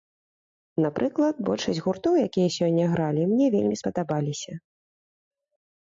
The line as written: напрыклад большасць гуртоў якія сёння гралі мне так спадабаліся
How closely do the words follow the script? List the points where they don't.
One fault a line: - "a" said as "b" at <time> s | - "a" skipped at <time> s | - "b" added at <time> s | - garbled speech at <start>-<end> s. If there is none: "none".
- "так" said as "вельмі" at 3.6 s